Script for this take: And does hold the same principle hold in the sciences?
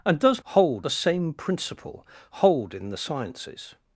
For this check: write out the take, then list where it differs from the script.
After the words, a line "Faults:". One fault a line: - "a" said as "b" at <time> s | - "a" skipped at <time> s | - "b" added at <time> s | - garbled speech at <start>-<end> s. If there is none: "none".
And does hold the same principle hold in the sciences?
Faults:
none